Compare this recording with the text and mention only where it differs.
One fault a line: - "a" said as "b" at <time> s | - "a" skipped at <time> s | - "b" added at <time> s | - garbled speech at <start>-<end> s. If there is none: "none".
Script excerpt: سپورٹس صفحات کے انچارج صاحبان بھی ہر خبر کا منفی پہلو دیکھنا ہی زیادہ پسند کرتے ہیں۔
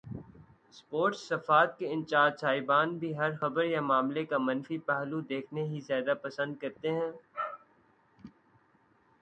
- "یا معاملے" added at 3.6 s